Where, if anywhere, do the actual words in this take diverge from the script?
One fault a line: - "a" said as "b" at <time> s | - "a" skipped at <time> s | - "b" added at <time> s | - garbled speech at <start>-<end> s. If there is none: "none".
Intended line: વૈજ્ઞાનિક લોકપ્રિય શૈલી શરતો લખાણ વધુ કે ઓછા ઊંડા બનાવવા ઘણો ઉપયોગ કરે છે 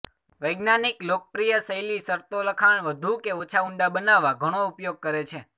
none